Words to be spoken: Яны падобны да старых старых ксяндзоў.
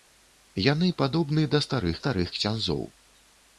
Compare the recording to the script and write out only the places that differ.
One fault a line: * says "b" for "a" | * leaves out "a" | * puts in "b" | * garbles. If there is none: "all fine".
all fine